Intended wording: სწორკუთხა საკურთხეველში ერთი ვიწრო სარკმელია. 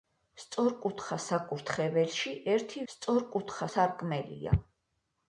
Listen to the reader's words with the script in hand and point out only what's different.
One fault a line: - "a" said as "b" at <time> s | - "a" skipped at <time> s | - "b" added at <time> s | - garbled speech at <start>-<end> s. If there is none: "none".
- "ვიწრო" said as "სწორკუთხა" at 2.9 s